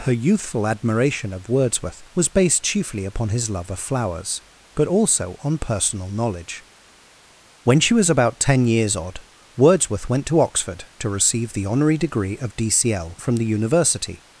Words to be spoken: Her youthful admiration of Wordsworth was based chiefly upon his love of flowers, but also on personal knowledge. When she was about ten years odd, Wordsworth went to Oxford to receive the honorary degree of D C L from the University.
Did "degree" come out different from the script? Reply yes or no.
no